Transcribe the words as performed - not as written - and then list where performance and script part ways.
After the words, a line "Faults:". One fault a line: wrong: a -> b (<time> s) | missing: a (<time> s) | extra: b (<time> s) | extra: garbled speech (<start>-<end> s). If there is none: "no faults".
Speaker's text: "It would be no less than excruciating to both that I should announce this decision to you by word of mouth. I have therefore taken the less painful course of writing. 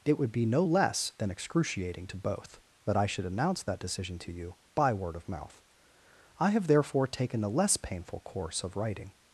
"It would be no less than excruciating to both that I should announce that decision to you by word of mouth. I have therefore taken the less painful course of writing.
Faults:
wrong: this -> that (3.6 s)